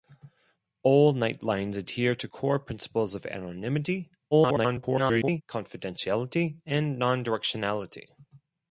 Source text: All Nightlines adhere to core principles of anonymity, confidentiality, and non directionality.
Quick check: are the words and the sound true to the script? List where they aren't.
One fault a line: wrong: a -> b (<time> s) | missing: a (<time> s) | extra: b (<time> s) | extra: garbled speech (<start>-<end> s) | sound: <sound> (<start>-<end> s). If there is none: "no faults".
extra: garbled speech (4.3-5.4 s)